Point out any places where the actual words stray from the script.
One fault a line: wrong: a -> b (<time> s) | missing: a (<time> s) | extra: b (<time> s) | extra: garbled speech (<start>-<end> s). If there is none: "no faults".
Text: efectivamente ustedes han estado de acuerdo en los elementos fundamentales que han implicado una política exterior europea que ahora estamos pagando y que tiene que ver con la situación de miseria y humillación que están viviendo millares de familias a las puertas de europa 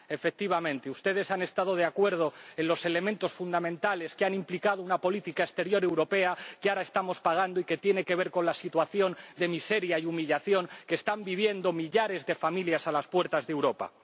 no faults